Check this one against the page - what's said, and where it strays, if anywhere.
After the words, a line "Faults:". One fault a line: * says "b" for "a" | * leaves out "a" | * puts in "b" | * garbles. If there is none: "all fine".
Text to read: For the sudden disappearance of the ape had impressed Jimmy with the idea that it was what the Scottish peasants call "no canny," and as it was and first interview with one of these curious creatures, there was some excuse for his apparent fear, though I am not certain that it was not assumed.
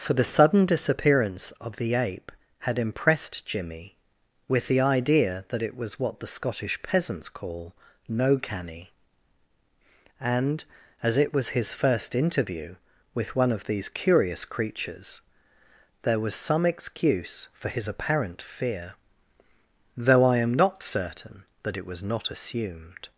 For the sudden disappearance of the ape had impressed Jimmy with the idea that it was what the Scottish peasants call "no canny," and as it was his first interview with one of these curious creatures, there was some excuse for his apparent fear, though I am not certain that it was not assumed.
Faults:
* says "his" for "and"